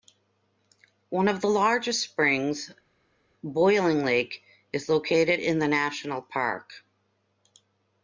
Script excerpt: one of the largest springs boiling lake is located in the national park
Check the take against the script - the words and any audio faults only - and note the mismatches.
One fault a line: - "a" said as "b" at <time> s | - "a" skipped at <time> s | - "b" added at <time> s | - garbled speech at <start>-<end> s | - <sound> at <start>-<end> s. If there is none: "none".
none